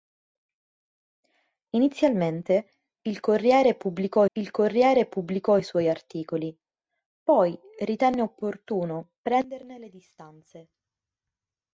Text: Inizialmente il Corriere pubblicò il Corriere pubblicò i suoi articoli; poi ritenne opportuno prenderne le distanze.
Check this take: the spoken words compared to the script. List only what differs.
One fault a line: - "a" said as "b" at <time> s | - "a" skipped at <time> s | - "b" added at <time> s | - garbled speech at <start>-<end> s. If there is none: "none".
none